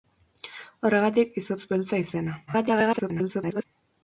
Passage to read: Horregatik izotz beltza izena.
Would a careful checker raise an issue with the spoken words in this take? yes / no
yes